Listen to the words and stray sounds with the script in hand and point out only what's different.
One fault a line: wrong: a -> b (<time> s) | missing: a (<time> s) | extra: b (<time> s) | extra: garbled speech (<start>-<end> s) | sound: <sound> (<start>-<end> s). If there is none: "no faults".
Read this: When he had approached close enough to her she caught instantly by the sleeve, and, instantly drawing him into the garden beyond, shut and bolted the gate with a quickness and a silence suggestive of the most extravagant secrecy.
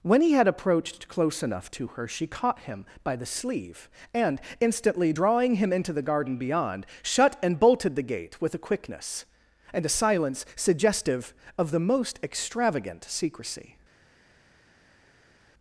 wrong: instantly -> him (2.6 s)